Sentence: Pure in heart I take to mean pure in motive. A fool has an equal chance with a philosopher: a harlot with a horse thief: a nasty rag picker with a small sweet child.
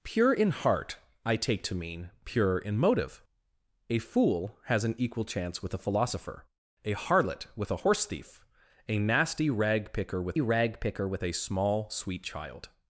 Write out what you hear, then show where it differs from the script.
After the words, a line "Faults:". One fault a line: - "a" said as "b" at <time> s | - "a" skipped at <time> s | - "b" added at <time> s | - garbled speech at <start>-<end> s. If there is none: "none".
Pure in heart I take to mean pure in motive. A fool has an equal chance with a philosopher: a harlot with a horse thief: a nasty rag picker with rag picker with a small sweet child.
Faults:
- "rag picker with" added at 10.4 s